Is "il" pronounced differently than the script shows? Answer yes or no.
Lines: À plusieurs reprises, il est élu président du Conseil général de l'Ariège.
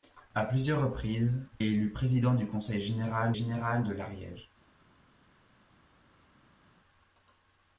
yes